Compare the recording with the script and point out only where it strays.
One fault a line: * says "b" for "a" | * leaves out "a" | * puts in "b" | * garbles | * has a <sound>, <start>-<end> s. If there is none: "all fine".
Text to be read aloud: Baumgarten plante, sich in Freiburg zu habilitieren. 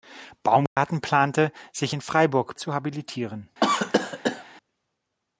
* has a dropout, 0.7-0.8 s
* has a cough, 3.6-4.4 s